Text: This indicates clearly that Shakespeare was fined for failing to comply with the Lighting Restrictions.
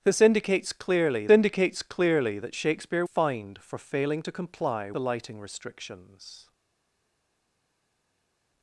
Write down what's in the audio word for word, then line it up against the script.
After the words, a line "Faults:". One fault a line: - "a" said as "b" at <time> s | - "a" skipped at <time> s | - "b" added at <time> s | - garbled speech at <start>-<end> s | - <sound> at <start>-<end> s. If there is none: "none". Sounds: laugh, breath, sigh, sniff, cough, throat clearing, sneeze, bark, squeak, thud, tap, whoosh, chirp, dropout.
This indicates clearly indicates clearly that Shakespeare fined for failing to comply the Lighting Restrictions.
Faults:
- "indicates clearly" added at 1.3 s
- "was" skipped at 3.0 s
- "with" skipped at 4.9 s